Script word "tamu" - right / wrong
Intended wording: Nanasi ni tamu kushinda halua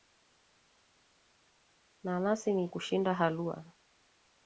wrong